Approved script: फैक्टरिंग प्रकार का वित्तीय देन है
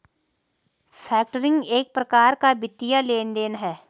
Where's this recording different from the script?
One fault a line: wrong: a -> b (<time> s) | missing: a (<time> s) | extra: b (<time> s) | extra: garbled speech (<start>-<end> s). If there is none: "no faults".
extra: एक (1.7 s)
extra: लेन (3.0 s)